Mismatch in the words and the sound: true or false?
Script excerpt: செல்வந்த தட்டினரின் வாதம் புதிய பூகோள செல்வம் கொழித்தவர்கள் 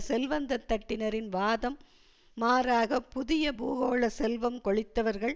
true